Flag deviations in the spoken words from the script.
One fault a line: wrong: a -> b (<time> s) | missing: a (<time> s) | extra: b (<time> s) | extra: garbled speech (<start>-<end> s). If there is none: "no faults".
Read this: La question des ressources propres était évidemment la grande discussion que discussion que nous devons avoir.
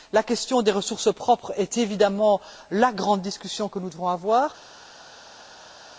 wrong: était -> est (1.6 s)
missing: discussion que (3.8 s)